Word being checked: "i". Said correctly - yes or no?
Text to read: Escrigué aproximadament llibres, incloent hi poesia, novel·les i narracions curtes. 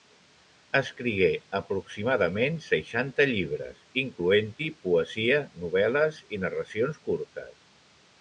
yes